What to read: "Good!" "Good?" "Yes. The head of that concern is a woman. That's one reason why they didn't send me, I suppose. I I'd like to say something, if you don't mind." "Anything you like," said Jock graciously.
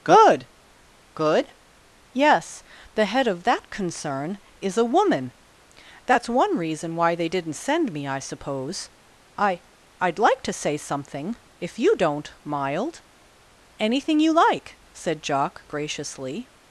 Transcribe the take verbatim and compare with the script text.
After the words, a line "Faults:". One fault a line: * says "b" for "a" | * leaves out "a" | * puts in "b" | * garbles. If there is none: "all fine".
"Good!" "Good?" "Yes. The head of that concern is a woman. That's one reason why they didn't send me, I suppose. I I'd like to say something, if you don't mild." "Anything you like," said Jock graciously.
Faults:
* says "mild" for "mind"